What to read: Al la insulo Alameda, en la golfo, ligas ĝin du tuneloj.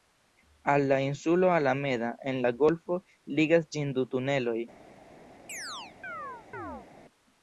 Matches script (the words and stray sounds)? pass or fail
fail